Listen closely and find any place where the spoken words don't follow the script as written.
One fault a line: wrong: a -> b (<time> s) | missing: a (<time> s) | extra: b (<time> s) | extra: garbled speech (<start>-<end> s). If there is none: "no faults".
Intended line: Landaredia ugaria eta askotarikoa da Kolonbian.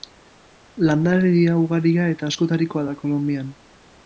no faults